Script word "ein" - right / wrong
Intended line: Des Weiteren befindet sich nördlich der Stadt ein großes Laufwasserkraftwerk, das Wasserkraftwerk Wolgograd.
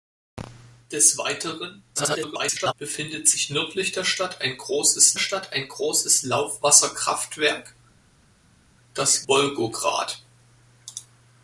right